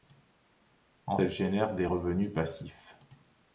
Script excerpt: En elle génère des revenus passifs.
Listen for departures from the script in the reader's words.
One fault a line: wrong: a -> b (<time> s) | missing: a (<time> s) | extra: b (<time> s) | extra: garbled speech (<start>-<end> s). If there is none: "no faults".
no faults